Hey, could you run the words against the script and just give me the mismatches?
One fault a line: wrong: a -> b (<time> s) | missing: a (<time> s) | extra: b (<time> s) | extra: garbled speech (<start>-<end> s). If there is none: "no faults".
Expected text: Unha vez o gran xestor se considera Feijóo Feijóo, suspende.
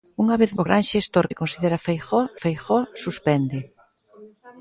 no faults